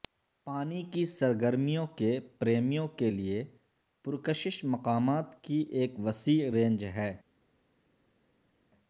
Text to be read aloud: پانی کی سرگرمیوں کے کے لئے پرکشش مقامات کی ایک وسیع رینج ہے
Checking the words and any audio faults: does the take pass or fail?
fail